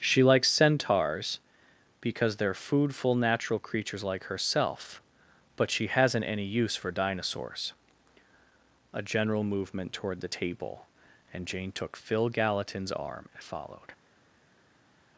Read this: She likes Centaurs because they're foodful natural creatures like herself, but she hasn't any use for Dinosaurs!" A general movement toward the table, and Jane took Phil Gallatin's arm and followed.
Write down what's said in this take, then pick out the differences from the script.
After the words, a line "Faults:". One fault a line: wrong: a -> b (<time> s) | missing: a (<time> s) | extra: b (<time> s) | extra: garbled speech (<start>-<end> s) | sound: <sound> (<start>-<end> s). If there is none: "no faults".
She likes Centaurs because they're foodful natural creatures like herself, but she hasn't any use for Dinosaurs!" A general movement toward the table, and Jane took Phil Gallatin's arm and followed.
Faults:
no faults